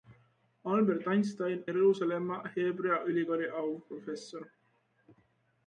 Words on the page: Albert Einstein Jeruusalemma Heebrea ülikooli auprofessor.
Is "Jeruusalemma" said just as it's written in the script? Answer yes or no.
yes